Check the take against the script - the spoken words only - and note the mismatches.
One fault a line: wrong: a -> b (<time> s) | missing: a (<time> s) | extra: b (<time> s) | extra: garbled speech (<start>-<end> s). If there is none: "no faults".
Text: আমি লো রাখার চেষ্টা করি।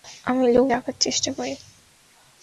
no faults